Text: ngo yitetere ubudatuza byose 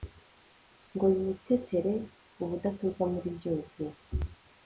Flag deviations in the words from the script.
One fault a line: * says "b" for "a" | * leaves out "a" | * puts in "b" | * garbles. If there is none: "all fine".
* puts in "muri"